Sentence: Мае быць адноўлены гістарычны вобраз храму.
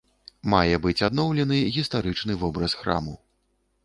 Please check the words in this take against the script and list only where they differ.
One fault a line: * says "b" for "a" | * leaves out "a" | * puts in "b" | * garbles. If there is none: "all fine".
all fine